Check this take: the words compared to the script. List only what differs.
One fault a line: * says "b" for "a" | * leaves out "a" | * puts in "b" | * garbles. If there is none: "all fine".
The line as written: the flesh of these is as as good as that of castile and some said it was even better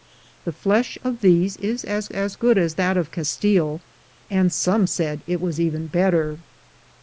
all fine